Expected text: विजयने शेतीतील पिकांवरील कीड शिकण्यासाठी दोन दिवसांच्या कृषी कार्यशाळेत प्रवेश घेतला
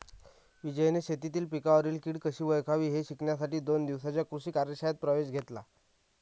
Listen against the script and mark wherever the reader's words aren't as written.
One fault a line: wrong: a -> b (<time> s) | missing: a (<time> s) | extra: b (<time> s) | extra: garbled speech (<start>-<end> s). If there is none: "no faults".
extra: कशी ओळखावी हे (2.2 s)